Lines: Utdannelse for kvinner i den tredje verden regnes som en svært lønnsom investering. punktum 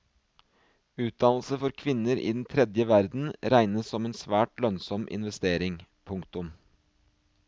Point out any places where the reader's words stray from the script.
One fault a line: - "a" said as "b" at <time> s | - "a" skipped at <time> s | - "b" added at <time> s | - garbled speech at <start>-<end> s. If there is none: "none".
none